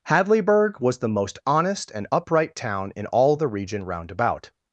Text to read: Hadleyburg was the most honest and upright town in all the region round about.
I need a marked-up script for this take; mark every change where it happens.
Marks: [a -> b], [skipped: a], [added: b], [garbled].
Hadleyburg was the most honest and upright town in all the region round about.